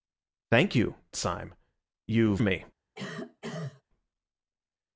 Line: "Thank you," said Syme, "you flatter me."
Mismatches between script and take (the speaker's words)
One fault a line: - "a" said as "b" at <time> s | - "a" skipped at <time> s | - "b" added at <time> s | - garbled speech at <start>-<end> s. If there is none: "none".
- "said" skipped at 0.9 s
- "flatter" skipped at 2.4 s